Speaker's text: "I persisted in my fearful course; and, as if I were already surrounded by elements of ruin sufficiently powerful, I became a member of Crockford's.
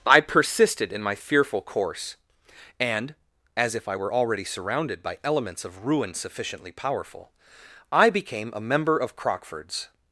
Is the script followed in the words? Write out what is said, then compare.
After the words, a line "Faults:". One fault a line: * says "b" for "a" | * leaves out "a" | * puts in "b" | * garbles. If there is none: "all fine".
"I persisted in my fearful course; and, as if I were already surrounded by elements of ruin sufficiently powerful, I became a member of Crockford's.
Faults:
all fine